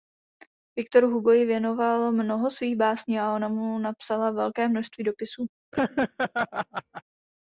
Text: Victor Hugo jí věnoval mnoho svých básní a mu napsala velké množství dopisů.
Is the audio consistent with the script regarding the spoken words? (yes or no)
no